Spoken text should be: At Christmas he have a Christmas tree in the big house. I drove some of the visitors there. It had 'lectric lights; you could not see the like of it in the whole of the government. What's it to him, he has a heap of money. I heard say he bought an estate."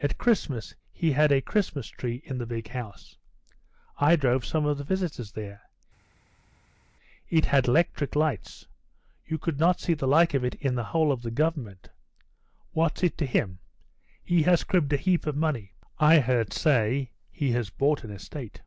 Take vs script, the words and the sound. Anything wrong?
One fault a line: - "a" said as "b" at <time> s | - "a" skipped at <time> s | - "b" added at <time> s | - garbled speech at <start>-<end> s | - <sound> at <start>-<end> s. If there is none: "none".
- "have" said as "had" at 1.1 s
- "cribbed" added at 14.6 s
- "has" added at 17.5 s